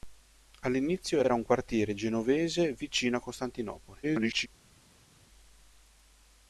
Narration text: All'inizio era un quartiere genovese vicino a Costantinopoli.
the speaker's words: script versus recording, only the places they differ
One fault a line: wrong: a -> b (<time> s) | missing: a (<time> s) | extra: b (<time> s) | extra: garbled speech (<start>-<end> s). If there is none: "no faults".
extra: era (1.2 s)
extra: garbled speech (4.0-4.5 s)